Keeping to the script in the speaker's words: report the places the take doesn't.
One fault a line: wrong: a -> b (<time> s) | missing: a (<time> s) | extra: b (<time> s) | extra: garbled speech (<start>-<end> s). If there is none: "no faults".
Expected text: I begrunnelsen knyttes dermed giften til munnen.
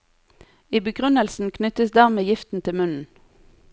no faults